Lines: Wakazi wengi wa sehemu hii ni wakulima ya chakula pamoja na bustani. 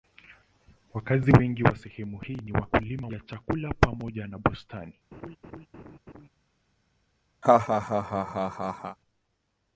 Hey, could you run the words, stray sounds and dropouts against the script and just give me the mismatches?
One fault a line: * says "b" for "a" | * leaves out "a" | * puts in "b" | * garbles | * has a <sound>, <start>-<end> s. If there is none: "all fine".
* has a laugh, 5.1-6.3 s
* has a laugh, 7.4-9.0 s